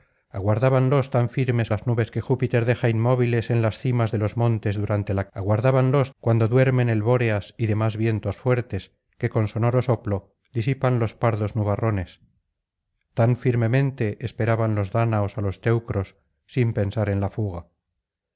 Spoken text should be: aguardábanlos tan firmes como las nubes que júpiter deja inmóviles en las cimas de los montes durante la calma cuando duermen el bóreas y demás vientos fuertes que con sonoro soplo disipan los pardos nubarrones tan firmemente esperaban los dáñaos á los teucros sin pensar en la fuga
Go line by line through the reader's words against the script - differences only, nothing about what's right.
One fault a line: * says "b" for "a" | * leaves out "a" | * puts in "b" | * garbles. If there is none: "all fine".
* leaves out "como"
* says "aguardábanlos" for "calma"